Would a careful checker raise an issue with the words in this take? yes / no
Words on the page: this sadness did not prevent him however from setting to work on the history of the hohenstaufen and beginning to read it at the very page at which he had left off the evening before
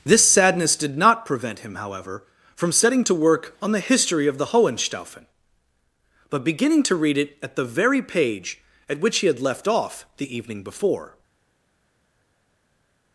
yes